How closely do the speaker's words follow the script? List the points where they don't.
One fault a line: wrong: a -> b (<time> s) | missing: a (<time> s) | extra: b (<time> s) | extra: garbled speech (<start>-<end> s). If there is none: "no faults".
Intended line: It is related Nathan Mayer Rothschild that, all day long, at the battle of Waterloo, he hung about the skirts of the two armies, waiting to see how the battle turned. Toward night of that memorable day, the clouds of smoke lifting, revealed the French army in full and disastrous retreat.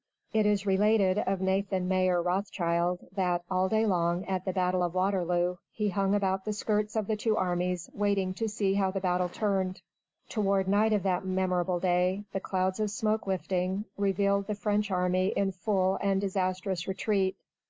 extra: of (1.2 s)